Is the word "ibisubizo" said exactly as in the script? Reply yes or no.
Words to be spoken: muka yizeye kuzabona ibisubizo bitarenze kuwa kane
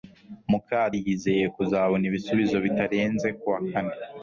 yes